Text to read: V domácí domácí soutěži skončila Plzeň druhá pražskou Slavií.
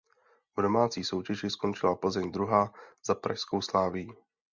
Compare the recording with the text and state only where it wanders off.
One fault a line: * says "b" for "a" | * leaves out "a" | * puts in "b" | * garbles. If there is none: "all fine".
* leaves out "domácí"
* puts in "za"